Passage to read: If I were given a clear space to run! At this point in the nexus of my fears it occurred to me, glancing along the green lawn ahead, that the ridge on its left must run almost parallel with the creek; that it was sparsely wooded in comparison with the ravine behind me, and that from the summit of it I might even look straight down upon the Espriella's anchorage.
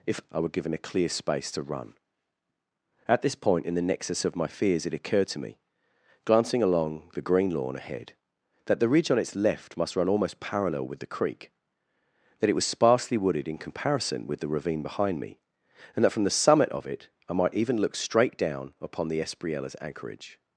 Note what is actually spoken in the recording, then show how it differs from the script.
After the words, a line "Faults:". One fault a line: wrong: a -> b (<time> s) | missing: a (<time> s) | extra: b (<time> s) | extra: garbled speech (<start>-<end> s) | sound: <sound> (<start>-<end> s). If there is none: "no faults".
If I were given a clear space to run! At this point in the nexus of my fears it occurred to me, glancing along the green lawn ahead, that the ridge on its left must run almost parallel with the creek; that it was sparsely wooded in comparison with the ravine behind me, and that from the summit of it I might even look straight down upon the Espriella's anchorage.
Faults:
no faults